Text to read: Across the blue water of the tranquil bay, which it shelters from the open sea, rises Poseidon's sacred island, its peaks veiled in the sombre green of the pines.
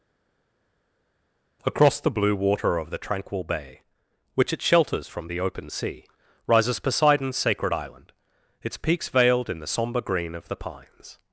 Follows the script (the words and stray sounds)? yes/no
yes